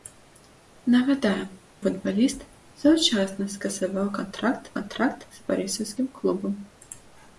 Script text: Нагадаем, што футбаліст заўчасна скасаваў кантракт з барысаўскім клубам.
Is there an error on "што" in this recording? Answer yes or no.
yes